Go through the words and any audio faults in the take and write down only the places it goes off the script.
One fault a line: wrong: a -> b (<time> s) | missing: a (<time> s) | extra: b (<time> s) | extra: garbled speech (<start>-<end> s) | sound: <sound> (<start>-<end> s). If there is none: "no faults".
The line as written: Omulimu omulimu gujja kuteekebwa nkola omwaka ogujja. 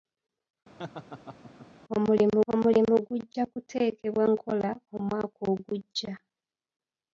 sound: laugh (0.8-1.7 s)